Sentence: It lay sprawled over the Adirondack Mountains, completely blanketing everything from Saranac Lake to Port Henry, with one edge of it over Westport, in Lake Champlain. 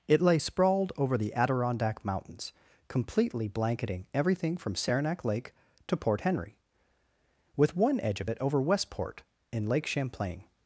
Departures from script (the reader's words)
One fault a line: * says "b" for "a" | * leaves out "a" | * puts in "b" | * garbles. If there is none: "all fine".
all fine